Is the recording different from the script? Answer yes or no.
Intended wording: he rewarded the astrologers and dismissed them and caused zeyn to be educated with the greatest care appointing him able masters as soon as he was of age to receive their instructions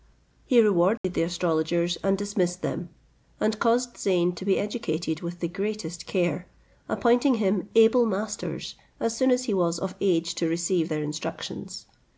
no